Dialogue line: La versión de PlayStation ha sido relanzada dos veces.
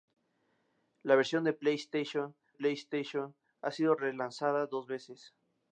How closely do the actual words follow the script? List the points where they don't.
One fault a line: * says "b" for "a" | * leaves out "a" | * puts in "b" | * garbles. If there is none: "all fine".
* puts in "PlayStation"